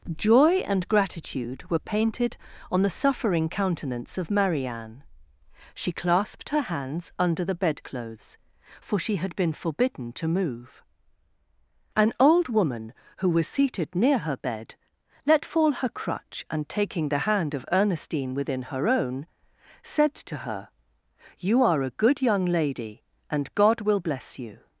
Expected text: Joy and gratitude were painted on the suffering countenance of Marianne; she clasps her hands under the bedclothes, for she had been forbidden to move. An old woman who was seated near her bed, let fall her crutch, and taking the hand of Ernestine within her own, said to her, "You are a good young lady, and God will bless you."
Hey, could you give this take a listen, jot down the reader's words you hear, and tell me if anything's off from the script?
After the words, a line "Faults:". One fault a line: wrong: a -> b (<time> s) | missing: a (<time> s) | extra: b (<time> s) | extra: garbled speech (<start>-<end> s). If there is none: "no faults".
Joy and gratitude were painted on the suffering countenance of Marianne; she clasped her hands under the bedclothes, for she had been forbidden to move. An old woman who was seated near her bed, let fall her crutch, and taking the hand of Ernestine within her own, said to her, "You are a good young lady, and God will bless you."
Faults:
wrong: clasps -> clasped (5.9 s)